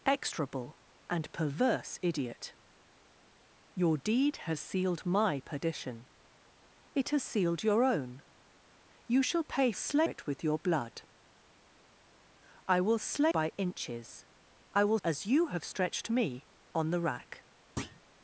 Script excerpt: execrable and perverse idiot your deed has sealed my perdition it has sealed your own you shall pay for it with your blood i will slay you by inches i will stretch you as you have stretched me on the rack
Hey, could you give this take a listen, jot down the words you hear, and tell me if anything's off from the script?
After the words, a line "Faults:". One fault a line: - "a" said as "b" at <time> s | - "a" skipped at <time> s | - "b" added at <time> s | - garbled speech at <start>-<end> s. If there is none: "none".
execrable and perverse idiot your deed has sealed my perdition it has sealed your own you shall pay slay it with your blood i will slay by inches i will as you have stretched me on the rack
Faults:
- "for" said as "slay" at 9.7 s
- "you" skipped at 13.3 s
- "stretch you" skipped at 15.0 s